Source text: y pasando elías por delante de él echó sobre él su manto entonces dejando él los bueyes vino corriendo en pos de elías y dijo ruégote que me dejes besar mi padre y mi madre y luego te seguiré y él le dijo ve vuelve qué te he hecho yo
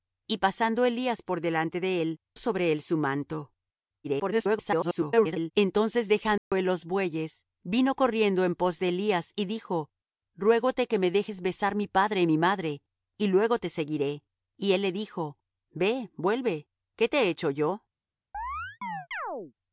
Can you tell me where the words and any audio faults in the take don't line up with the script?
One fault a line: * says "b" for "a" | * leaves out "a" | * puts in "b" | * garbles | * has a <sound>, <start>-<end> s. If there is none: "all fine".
* leaves out "echó"
* garbles
* has a dropout, 6.4-6.5 s
* has a chirp, 18.3-19.5 s